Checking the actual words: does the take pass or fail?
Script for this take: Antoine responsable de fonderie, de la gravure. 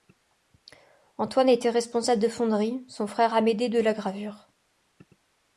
fail